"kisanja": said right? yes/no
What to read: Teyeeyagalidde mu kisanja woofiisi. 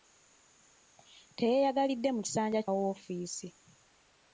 yes